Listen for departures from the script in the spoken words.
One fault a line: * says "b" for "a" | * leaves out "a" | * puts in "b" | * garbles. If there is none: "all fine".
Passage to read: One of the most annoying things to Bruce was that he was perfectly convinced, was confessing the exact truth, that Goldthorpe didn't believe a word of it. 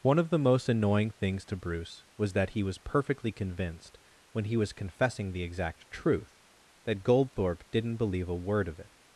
* puts in "when he"